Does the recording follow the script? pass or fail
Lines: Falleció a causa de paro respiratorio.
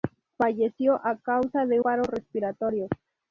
pass